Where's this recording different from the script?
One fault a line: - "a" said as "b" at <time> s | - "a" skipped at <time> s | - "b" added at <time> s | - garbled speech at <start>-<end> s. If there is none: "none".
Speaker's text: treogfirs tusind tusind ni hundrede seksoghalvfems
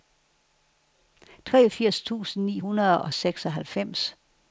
- "tusind" skipped at 2.5 s
- "og" added at 3.0 s